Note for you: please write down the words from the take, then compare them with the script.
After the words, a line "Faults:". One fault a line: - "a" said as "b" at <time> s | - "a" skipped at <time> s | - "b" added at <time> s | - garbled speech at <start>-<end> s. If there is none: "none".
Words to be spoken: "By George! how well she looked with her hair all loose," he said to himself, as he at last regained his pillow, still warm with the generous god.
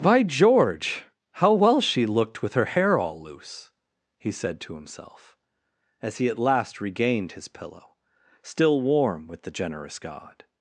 "By George! how well she looked with her hair all loose," he said to himself, as he at last regained his pillow, still warm with the generous god.
Faults:
none